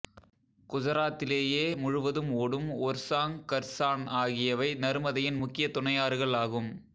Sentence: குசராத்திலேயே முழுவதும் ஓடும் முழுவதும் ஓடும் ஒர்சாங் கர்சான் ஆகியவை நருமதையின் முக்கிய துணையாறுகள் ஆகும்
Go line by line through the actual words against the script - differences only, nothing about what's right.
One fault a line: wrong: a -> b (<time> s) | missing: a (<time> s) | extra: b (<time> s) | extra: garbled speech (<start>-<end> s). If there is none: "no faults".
missing: முழுவதும் ஓடும் (2.7 s)